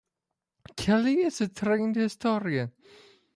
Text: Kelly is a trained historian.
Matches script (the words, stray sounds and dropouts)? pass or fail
pass